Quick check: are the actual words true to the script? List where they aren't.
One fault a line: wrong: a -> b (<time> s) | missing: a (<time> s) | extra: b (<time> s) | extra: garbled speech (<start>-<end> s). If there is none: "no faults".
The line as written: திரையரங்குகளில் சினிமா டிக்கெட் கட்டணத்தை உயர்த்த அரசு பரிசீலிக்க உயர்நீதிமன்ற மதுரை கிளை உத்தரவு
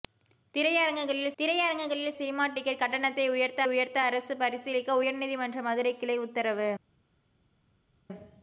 extra: திரையரங்குகளில் (1.4 s)
extra: உயர்த்த (3.7 s)